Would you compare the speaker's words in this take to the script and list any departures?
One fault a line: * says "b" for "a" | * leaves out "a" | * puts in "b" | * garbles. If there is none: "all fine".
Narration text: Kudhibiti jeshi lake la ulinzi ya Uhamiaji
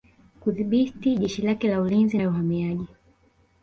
all fine